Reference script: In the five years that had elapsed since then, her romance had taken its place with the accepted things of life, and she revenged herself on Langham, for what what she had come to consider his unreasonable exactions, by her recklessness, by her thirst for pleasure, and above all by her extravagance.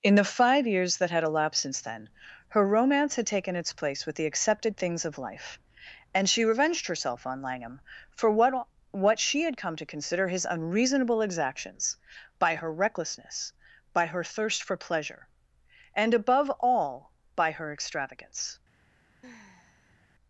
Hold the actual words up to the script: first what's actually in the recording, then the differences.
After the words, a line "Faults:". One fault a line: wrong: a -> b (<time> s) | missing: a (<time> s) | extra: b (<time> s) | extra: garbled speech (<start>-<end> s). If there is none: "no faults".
In the five years that had elapsed since then, her romance had taken its place with the accepted things of life, and she revenged herself on Langham, for what what she had come to consider his unreasonable exactions, by her recklessness, by her thirst for pleasure, and above all by her extravagance.
Faults:
no faults